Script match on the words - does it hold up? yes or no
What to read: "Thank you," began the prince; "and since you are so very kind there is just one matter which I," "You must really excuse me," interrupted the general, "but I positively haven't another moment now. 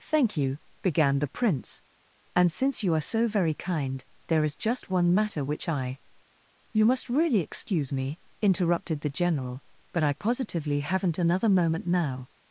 yes